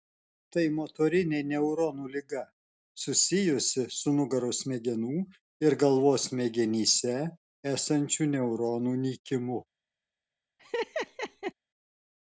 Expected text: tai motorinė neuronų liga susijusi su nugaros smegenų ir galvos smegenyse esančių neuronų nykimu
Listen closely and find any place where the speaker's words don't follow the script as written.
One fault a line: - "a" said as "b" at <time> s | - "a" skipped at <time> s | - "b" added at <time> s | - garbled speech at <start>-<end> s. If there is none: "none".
none